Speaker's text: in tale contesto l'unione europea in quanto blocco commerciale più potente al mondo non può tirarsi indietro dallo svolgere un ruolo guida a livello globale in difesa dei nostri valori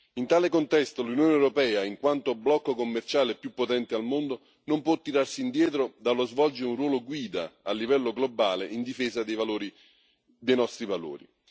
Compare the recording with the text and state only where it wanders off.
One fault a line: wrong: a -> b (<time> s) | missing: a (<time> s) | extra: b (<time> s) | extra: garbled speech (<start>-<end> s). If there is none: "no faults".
no faults